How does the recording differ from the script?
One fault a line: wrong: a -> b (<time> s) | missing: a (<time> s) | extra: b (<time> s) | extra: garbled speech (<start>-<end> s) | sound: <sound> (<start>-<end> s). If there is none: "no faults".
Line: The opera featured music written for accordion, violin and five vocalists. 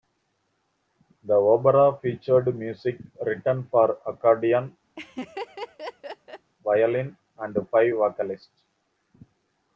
sound: laugh (5.0-6.5 s)